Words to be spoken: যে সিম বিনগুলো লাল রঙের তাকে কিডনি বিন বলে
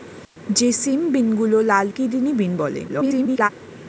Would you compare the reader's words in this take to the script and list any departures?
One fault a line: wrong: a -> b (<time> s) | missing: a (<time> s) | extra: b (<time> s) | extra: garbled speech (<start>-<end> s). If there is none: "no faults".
missing: রঙের তাকে (1.9 s)
extra: garbled speech (2.9-3.5 s)